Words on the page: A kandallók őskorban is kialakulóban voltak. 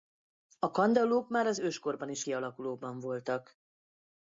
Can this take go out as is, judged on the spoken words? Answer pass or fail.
fail